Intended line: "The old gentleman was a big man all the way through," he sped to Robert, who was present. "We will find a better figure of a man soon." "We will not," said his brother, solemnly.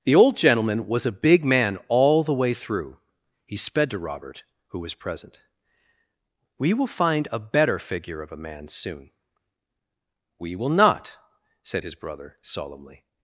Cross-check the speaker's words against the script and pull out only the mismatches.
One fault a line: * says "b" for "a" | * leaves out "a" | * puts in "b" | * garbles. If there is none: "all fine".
all fine